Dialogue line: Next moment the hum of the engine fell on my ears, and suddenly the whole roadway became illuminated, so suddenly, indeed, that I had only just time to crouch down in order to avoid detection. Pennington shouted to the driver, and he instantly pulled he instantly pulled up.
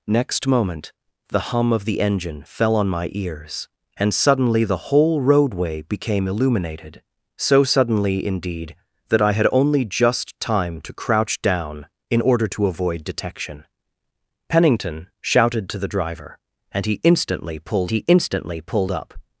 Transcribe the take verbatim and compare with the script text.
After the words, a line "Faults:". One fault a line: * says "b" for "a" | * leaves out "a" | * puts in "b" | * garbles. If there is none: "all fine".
Next moment the hum of the engine fell on my ears, and suddenly the whole roadway became illuminated, so suddenly, indeed, that I had only just time to crouch down in order to avoid detection. Pennington shouted to the driver, and he instantly pulled he instantly pulled up.
Faults:
all fine